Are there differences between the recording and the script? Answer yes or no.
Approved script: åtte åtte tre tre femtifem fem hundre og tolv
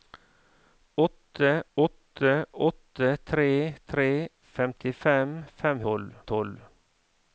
yes